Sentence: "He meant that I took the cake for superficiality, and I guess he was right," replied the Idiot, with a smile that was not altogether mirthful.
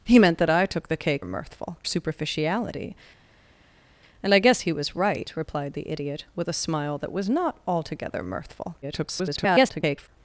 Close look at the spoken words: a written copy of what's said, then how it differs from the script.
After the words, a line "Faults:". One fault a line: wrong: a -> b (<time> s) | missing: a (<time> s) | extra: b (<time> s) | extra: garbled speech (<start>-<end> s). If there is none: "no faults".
"He meant that I took the cake mirthful superficiality, and I guess he was right," replied the Idiot, with a smile that was not altogether mirthful. [garbled]
Faults:
wrong: for -> mirthful (1.2 s)
extra: garbled speech (8.8-10.1 s)